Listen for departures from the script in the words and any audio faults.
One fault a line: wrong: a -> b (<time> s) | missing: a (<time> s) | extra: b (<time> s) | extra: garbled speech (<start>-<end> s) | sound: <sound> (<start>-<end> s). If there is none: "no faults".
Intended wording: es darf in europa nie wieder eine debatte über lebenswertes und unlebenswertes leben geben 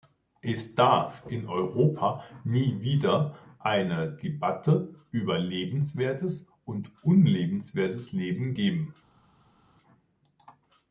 no faults